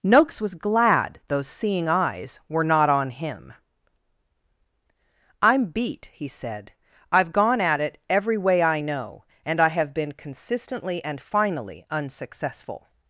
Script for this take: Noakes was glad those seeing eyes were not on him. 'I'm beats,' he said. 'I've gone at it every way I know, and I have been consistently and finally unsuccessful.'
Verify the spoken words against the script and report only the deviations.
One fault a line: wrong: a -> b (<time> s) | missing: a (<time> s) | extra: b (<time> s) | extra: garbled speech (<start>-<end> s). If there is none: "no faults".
wrong: beats -> beat (5.7 s)